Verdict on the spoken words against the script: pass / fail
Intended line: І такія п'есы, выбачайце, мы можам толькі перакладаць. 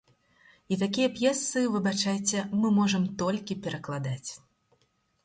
pass